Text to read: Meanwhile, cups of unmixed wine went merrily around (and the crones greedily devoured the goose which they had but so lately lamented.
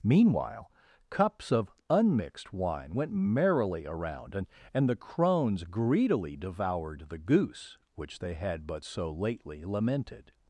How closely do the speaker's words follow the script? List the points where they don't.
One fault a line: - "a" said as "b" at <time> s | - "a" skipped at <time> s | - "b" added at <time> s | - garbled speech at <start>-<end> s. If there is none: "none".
- "and" added at 4.7 s